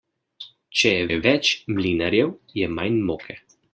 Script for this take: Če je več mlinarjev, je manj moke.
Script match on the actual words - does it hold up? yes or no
no